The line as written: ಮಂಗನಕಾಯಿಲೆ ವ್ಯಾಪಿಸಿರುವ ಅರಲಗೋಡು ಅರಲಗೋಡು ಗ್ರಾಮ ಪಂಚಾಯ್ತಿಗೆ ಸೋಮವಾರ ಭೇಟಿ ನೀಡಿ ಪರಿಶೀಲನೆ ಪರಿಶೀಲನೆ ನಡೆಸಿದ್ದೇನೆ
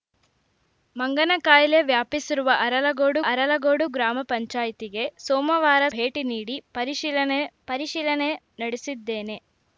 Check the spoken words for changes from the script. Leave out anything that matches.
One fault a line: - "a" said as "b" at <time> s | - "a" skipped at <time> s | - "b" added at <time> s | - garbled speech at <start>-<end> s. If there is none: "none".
none